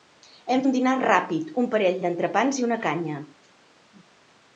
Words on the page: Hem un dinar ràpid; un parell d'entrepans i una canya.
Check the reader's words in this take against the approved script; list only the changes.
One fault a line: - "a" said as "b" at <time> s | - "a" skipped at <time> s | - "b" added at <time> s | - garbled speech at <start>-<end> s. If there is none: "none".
none